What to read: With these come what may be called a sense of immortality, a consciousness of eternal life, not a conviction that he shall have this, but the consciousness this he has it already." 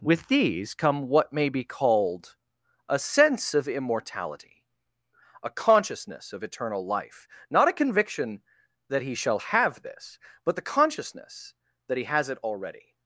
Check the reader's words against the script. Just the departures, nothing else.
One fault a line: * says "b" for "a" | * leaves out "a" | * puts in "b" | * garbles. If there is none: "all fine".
* says "that" for "this"